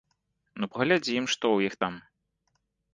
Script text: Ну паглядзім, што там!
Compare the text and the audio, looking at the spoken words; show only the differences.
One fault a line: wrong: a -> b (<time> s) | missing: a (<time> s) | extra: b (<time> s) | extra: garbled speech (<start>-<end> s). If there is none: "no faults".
extra: ў іх (1.6 s)